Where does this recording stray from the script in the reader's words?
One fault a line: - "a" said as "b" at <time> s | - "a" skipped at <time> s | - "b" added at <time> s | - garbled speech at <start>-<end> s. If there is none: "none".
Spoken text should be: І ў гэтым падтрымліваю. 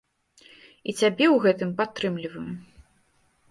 - "цябе" added at 1.0 s